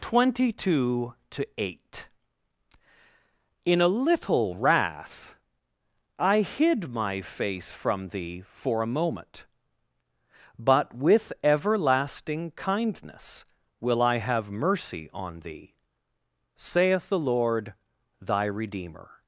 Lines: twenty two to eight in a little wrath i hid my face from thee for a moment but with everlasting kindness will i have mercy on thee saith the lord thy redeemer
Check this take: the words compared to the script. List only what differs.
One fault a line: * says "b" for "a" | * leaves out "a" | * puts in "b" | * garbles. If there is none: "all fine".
all fine